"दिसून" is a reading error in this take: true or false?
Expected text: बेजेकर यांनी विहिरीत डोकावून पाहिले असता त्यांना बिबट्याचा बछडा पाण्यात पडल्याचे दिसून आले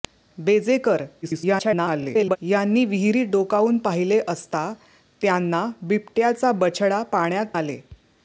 true